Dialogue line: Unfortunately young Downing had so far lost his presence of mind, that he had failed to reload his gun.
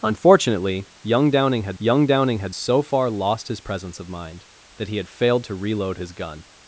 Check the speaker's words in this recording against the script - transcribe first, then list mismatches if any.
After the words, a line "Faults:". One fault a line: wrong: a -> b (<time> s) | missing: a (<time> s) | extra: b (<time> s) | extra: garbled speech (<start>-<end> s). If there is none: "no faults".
Unfortunately young Downing had young Downing had so far lost his presence of mind, that he had failed to reload his gun.
Faults:
extra: young Downing had (1.8 s)